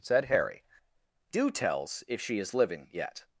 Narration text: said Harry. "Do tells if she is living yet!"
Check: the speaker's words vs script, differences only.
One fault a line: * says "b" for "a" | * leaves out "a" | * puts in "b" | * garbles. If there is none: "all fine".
all fine